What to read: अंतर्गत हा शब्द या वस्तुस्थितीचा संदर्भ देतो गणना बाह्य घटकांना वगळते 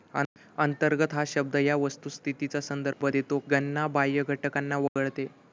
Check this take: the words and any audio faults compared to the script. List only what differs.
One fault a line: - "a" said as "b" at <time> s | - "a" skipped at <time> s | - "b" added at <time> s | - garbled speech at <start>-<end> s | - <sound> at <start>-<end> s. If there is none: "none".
- dropout at 2.9-3.0 s
- dropout at 4.9-5.0 s